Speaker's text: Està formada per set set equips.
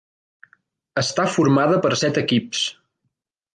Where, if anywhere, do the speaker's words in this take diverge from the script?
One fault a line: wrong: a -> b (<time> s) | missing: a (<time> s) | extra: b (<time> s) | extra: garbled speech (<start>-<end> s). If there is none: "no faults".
missing: set (2.2 s)